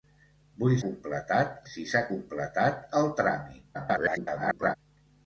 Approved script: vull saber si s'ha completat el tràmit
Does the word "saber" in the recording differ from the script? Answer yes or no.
yes